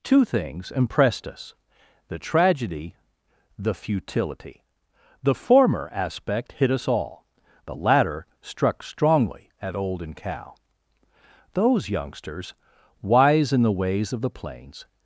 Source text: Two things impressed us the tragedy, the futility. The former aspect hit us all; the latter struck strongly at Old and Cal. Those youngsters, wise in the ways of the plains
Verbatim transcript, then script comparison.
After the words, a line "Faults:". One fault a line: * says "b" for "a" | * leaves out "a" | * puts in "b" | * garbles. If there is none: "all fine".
Two things impressed us the tragedy, the futility. The former aspect hit us all; the latter struck strongly at Old and Cal. Those youngsters, wise in the ways of the plains
Faults:
all fine